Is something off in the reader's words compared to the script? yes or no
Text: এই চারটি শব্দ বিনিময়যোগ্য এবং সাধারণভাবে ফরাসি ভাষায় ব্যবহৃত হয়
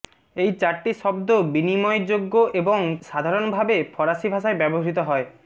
no